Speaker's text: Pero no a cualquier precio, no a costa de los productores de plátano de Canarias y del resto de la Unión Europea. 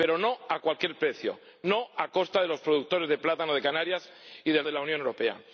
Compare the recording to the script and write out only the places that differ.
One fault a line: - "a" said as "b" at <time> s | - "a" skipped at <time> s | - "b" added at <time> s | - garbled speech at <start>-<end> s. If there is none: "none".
- "resto" skipped at 4.6 s